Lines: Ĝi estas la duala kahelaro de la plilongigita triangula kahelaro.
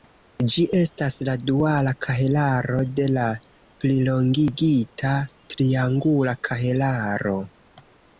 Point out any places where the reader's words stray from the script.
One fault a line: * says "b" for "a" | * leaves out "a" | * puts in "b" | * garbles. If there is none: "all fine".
all fine